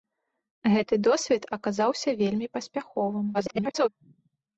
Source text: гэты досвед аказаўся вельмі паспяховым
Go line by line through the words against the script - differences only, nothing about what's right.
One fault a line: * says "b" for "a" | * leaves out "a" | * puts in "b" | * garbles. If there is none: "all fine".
* garbles